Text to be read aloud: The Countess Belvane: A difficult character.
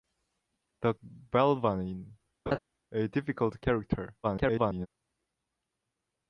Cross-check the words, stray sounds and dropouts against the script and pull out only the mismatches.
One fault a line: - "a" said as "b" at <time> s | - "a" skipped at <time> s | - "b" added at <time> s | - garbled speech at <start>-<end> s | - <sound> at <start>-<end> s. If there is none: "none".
- "Countess" skipped at 0.9 s
- laugh at 2.5-2.6 s
- garbled speech at 4.2-4.9 s